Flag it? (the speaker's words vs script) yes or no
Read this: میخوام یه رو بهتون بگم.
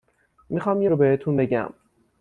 no